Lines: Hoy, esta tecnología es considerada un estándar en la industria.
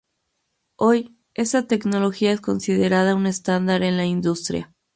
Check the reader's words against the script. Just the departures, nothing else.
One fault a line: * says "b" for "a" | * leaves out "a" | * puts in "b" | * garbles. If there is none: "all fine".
all fine